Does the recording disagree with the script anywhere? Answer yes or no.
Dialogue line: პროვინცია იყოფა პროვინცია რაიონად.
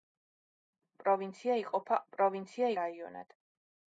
no